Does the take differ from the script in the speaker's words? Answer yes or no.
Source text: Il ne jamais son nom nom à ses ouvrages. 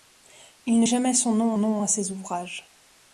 no